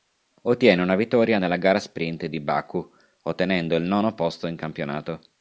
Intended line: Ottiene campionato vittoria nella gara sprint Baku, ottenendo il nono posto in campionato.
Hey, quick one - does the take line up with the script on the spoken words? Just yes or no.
no